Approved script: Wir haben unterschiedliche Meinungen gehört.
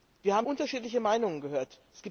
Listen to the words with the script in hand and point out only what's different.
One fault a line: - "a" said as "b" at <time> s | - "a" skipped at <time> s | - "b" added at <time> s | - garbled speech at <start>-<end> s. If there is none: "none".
none